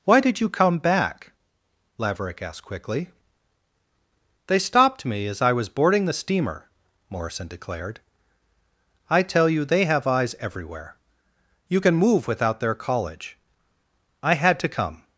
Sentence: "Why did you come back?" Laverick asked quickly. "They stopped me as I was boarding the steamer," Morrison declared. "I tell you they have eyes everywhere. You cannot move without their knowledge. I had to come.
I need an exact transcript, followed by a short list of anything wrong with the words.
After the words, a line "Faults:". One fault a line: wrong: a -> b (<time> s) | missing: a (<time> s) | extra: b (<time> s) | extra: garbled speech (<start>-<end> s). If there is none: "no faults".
"Why did you come back?" Laverick asked quickly. "They stopped me as I was boarding the steamer," Morrison declared. "I tell you they have eyes everywhere. You can move without their college. I had to come.
Faults:
wrong: cannot -> can (11.8 s)
wrong: knowledge -> college (12.7 s)